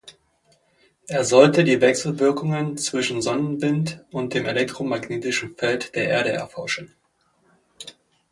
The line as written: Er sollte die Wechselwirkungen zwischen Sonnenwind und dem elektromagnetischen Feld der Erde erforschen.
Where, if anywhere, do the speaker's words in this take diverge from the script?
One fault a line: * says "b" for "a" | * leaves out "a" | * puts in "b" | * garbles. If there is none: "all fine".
all fine